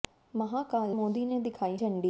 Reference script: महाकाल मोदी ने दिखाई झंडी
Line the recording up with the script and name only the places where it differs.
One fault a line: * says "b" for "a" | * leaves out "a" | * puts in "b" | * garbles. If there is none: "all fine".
all fine